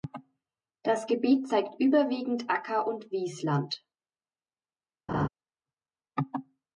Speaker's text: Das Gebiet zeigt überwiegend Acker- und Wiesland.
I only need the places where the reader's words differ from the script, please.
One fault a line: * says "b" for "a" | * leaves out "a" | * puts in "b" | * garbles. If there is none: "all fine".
all fine